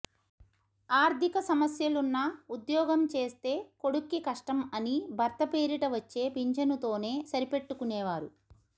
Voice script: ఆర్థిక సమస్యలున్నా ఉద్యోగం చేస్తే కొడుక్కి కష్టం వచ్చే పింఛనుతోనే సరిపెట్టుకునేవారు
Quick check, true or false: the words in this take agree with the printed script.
false